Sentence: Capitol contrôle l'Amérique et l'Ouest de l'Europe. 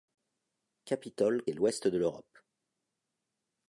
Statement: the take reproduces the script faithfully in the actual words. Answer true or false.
false